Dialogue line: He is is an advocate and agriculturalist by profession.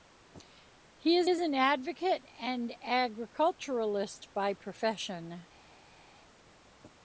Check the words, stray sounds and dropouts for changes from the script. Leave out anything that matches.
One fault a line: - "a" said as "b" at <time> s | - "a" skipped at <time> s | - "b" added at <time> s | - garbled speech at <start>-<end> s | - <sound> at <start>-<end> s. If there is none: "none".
none